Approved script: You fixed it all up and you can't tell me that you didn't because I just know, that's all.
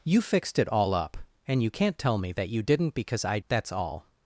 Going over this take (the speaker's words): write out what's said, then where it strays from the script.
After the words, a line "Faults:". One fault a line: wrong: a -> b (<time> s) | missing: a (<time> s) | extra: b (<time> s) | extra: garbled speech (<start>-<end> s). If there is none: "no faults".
You fixed it all up and you can't tell me that you didn't because I that's all.
Faults:
missing: just know (3.4 s)